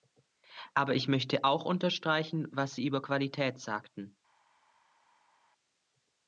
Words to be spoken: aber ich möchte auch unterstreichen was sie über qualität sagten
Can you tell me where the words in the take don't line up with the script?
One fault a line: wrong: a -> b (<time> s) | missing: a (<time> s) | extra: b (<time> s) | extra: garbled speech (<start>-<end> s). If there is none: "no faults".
no faults